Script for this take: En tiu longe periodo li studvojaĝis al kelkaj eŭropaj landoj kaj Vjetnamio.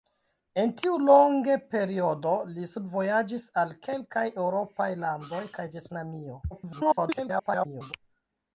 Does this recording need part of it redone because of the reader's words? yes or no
yes